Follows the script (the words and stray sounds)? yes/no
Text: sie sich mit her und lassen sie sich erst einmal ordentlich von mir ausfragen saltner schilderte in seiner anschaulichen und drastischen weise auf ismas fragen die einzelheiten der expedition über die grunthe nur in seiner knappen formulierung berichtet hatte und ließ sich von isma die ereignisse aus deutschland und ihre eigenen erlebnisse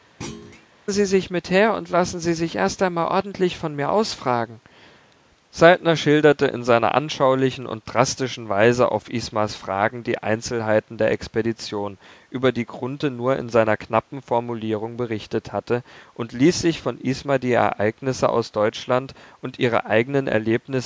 no